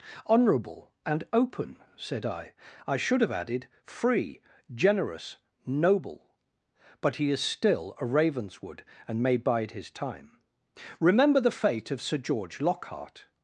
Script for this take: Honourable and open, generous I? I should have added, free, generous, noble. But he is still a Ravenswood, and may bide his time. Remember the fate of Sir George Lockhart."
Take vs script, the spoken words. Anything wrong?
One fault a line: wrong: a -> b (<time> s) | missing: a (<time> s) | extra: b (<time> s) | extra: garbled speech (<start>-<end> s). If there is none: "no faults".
wrong: generous -> said (1.9 s)